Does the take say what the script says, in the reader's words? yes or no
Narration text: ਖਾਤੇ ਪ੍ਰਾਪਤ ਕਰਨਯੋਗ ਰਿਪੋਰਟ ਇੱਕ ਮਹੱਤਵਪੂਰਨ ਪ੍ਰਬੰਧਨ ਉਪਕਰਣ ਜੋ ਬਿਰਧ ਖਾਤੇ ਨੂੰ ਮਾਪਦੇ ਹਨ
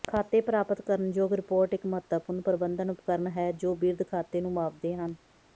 no